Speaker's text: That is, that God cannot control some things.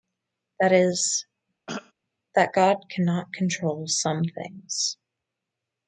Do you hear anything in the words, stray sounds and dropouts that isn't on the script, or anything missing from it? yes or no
yes